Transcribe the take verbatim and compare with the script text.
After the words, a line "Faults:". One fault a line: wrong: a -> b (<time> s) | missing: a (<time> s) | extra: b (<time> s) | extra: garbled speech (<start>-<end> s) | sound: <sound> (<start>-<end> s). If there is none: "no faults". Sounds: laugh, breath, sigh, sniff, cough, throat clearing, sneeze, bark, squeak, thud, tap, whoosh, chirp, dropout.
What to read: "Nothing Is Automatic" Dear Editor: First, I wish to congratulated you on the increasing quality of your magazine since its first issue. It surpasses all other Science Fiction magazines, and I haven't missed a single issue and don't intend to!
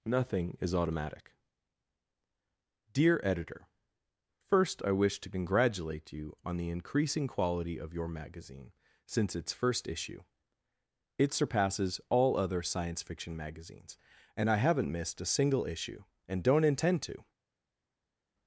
"Nothing Is Automatic" Dear Editor: First, I wish to congratulate you on the increasing quality of your magazine since its first issue. It surpasses all other Science Fiction magazines, and I haven't missed a single issue and don't intend to!
Faults:
wrong: congratulated -> congratulate (5.3 s)